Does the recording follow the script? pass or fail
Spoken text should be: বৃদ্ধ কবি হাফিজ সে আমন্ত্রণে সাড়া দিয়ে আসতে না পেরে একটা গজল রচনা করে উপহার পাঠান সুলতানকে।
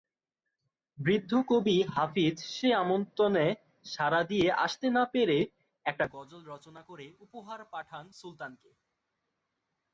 pass